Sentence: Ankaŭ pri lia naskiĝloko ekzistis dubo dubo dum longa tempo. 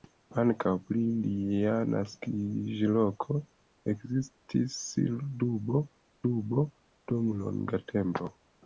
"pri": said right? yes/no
yes